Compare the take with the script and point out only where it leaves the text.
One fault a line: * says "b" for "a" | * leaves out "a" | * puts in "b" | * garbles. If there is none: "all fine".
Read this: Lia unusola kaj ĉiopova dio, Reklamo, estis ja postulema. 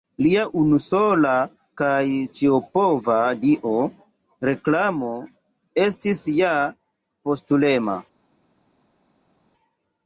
all fine